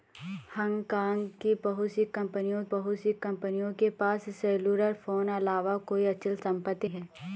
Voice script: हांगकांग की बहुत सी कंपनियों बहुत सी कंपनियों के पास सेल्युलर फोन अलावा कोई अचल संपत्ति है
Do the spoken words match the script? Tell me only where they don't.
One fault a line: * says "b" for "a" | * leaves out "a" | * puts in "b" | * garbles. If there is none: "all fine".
all fine